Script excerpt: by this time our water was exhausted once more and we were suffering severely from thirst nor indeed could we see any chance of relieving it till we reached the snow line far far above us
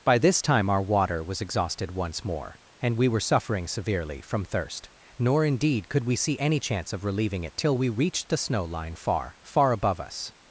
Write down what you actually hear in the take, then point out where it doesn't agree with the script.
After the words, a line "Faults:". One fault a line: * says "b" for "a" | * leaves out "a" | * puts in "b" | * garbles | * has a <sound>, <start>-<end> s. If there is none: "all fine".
by this time our water was exhausted once more and we were suffering severely from thirst nor indeed could we see any chance of relieving it till we reached the snow line far far above us
Faults:
all fine